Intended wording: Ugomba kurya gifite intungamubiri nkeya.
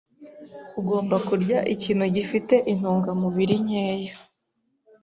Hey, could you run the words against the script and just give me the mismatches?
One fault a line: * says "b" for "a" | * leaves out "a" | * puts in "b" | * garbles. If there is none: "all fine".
* puts in "ikintu"